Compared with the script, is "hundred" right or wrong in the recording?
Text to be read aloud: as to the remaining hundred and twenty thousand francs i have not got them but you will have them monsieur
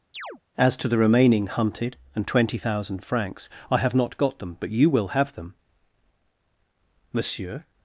wrong